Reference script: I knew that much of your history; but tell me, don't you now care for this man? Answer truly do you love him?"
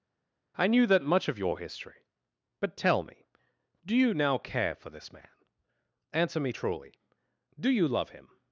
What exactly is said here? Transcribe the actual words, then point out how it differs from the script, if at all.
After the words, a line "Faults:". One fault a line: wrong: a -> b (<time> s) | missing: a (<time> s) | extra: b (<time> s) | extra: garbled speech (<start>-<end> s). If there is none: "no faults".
I knew that much of your history; but tell me, do you now care for this man? Answer me truly do you love him?"
Faults:
wrong: don't -> do (3.8 s)
extra: me (6.4 s)